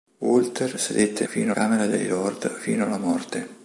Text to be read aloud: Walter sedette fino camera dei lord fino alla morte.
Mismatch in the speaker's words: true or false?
false